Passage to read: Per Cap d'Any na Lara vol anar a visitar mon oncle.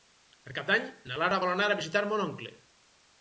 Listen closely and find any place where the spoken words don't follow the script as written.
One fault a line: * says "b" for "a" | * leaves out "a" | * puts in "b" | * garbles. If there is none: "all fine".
all fine